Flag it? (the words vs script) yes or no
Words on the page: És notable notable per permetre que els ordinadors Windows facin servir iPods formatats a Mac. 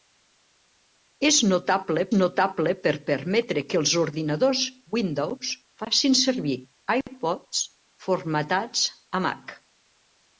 no